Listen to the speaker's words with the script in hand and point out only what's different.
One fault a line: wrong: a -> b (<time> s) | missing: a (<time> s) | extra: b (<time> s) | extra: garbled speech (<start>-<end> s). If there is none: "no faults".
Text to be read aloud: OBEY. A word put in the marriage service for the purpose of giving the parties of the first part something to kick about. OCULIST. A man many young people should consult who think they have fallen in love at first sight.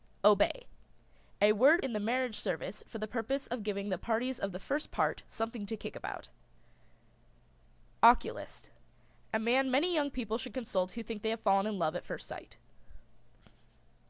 missing: put (1.9 s)